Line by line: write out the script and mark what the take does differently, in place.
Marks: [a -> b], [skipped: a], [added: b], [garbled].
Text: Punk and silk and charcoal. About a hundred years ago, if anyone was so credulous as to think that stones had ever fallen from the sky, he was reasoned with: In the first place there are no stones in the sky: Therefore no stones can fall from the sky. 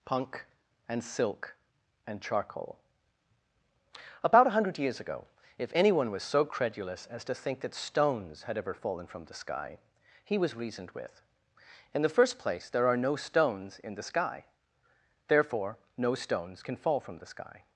Punk and silk and charcoal. About a hundred years ago, if anyone was so credulous as to think that stones had ever fallen from the sky, he was reasoned with: In the first place there are no stones in the sky: Therefore no stones can fall from the sky.